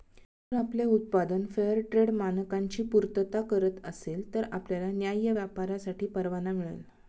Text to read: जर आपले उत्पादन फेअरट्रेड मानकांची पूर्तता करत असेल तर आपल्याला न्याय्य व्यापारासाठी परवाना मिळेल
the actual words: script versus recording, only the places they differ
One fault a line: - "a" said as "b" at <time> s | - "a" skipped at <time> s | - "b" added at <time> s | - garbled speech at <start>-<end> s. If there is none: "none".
none